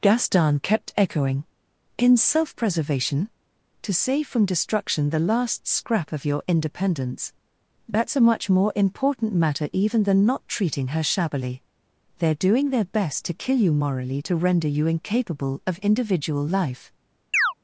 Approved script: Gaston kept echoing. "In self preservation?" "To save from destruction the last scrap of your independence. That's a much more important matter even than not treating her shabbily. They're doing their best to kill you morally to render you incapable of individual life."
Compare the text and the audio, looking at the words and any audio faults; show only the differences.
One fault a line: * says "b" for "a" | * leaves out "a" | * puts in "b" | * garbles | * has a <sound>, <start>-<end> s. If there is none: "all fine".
* has a chirp, 17.3-17.5 s